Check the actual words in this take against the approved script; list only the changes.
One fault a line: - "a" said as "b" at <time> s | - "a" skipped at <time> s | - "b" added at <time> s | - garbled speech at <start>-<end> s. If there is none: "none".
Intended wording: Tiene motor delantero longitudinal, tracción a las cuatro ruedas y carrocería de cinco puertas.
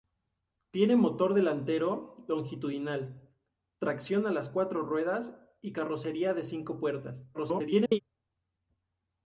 - garbled speech at 7.3-8.0 s